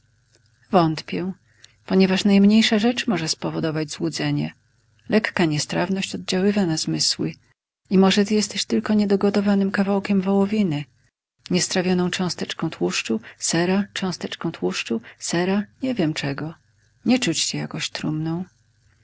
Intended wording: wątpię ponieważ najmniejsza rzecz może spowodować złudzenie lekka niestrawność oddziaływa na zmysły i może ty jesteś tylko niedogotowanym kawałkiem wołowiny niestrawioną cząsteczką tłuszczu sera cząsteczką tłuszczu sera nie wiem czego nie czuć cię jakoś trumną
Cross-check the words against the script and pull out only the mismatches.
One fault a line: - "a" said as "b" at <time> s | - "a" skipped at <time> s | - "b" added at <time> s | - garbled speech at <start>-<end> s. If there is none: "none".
none